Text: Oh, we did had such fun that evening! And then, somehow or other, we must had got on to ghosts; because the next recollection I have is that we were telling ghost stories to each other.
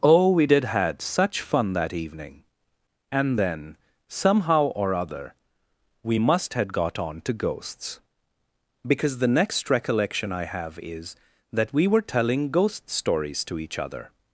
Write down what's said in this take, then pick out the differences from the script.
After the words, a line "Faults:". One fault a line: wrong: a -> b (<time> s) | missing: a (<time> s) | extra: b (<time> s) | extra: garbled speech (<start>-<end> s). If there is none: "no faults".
Oh, we did had such fun that evening! And then, somehow or other, we must had got on to ghosts; because the next recollection I have is that we were telling ghost stories to each other.
Faults:
no faults